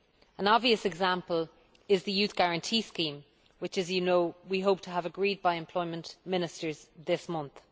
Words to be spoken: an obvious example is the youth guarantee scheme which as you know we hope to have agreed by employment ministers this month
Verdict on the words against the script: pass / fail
pass